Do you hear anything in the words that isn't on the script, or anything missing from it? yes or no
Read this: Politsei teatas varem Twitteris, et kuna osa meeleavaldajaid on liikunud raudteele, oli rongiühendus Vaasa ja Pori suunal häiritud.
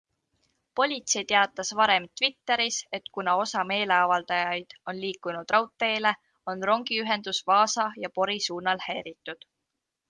yes